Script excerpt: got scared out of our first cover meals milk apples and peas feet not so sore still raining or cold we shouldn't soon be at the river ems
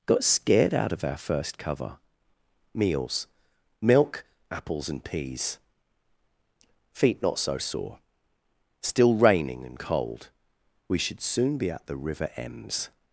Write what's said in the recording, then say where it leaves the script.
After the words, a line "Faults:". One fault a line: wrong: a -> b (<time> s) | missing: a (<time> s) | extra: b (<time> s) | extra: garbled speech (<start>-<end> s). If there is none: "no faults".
got scared out of our first cover meals milk apples and peas feet not so sore still raining and cold we should soon be at the river ems
Faults:
wrong: or -> and (9.6 s)
wrong: shouldn't -> should (11.0 s)